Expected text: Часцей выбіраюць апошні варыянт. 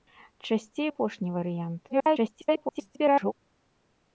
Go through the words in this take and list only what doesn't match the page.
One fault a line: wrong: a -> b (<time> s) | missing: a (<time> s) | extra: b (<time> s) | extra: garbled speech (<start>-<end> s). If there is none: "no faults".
missing: выбіраюць (0.9 s)
extra: garbled speech (1.9-3.3 s)